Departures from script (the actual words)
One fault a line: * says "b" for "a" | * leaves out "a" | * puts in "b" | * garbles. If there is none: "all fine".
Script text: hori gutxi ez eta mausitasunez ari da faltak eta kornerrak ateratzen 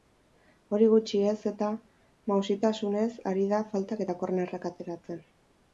all fine